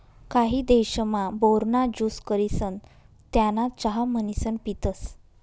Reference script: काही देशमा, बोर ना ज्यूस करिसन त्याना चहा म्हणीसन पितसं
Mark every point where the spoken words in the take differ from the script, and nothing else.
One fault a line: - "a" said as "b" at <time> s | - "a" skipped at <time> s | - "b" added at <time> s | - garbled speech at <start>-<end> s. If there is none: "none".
none